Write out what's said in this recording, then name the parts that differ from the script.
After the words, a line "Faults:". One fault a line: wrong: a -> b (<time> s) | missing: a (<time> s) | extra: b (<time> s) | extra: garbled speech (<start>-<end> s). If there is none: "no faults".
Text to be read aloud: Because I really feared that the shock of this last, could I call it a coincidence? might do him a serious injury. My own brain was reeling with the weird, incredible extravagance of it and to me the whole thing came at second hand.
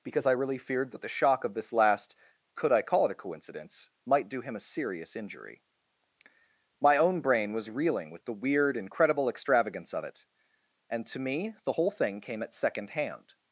Because I really feared that the shock of this last, could I call it a coincidence? might do him a serious injury. My own brain was reeling with the weird, incredible extravagance of it and to me the whole thing came at second hand.
Faults:
no faults